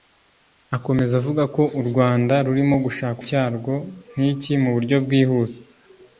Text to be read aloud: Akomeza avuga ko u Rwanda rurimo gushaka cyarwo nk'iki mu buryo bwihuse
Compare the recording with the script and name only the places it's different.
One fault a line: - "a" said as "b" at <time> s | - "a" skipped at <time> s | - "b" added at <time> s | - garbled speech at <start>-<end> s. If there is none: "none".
none